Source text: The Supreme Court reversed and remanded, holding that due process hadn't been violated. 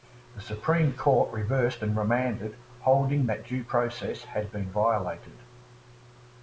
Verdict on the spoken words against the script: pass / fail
fail